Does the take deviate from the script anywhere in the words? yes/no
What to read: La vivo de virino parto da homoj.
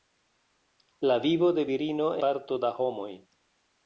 no